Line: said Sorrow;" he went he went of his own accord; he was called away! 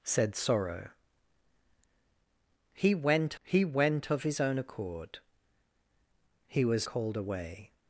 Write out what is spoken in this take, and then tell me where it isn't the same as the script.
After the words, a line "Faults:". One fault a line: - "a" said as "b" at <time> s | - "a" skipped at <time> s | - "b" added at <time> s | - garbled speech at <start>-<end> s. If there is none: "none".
said Sorrow;" he went he went of his own accord; he was called away!
Faults:
none